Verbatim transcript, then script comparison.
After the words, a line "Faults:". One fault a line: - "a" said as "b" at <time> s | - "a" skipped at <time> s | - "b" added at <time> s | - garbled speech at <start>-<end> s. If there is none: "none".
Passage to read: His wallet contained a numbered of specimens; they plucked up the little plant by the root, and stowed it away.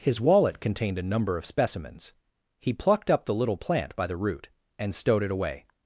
His wallet contained a number of specimens; he plucked up the little plant by the root, and stowed it away.
Faults:
- "numbered" said as "number" at 1.0 s
- "they" said as "he" at 2.6 s